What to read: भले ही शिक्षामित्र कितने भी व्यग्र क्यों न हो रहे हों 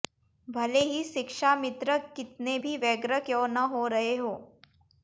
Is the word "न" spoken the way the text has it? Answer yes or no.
yes